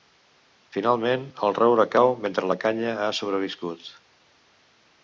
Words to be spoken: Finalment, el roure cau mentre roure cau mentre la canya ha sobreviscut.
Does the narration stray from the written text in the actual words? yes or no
yes